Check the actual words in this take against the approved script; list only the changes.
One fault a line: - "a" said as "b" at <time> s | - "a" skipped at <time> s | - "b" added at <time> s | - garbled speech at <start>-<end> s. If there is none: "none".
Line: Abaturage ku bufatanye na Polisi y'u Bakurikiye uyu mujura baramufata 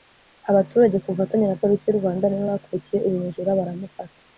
- "Rwanda nibo" added at 2.0 s